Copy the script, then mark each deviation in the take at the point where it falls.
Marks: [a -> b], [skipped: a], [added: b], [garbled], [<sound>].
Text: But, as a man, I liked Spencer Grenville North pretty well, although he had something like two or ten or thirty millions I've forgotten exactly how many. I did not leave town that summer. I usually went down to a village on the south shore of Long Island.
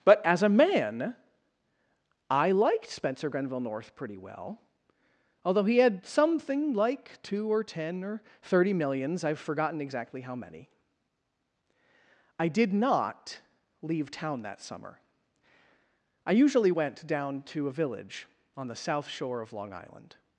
But, as a man, I liked Spencer Grenville North pretty well, although he had something like two or ten or thirty millions I've forgotten exactly how many. I did not leave town that summer. I usually went down to a village on the south shore of Long Island.